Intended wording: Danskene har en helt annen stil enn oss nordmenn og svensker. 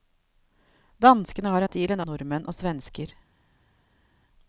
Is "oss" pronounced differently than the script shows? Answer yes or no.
yes